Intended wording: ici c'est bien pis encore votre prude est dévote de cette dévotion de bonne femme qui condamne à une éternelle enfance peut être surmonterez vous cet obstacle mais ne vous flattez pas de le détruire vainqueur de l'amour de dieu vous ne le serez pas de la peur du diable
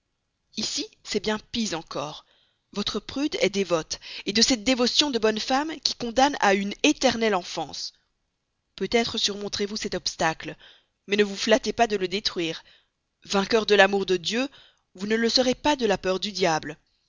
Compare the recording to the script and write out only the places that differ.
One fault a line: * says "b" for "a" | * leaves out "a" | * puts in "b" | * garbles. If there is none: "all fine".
all fine